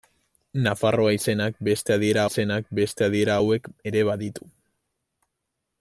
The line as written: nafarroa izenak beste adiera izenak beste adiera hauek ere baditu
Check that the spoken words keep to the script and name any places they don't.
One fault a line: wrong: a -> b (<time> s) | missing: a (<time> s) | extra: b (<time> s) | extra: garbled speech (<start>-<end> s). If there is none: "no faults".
no faults